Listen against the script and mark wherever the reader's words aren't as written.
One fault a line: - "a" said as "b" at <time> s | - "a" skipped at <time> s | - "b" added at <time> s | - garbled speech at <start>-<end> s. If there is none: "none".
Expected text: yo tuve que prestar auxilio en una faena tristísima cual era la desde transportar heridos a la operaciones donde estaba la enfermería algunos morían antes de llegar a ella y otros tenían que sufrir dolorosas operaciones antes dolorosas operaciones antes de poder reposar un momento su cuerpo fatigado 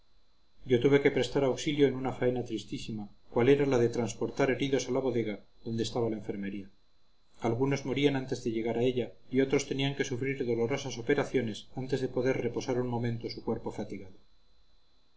- "desde" said as "de" at 3.8 s
- "operaciones" said as "bodega" at 5.1 s
- "dolorosas operaciones antes" skipped at 12.0 s